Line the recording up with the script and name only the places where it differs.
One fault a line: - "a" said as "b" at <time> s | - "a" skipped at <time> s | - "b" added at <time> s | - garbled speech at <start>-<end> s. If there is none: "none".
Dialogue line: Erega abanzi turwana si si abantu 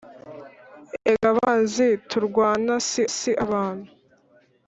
none